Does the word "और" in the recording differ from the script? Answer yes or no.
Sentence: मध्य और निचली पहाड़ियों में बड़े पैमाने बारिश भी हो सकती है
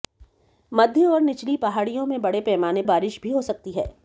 no